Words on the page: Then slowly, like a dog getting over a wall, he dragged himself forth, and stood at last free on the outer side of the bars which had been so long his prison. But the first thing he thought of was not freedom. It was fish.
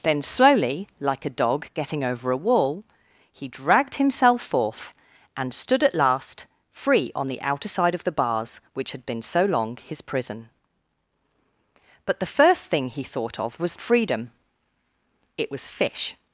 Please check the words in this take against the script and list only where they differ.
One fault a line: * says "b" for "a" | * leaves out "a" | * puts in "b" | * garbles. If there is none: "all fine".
* leaves out "not"